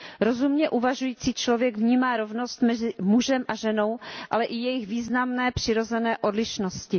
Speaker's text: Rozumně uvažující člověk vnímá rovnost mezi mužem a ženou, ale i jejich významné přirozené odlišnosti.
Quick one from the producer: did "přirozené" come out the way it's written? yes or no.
yes